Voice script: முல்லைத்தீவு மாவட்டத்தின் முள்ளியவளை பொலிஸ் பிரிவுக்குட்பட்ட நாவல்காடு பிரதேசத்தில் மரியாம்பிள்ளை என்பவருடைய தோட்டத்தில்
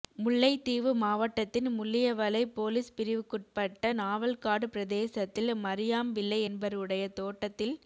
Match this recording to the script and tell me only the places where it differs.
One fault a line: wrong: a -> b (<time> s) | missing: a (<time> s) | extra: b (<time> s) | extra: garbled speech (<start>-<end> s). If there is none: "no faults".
no faults